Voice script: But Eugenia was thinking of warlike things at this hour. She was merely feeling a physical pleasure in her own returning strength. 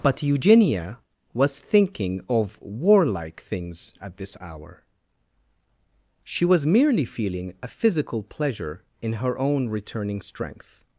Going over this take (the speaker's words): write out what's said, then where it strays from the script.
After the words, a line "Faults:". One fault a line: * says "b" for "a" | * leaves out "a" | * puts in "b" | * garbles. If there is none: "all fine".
But Eugenia was thinking of warlike things at this hour. She was merely feeling a physical pleasure in her own returning strength.
Faults:
all fine